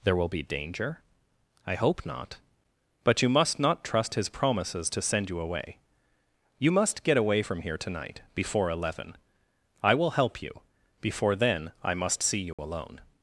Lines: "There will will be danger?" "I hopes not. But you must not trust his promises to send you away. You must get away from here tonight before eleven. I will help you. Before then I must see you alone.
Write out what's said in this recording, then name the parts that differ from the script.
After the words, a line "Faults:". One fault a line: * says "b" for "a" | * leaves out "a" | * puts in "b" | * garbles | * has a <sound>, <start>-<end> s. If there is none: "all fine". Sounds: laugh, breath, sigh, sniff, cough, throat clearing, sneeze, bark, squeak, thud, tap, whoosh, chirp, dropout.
"There will be danger?" "I hope not. But you must not trust his promises to send you away. You must get away from here tonight before eleven. I will help you. Before then I must see you alone.
Faults:
* leaves out "will"
* says "hope" for "hopes"
* has a dropout, 12.5-12.6 s